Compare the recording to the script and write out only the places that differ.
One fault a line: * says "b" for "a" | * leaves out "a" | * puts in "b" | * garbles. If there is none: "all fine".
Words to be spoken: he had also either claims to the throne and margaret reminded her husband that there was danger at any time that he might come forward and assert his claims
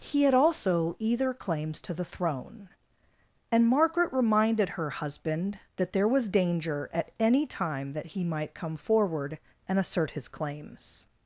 all fine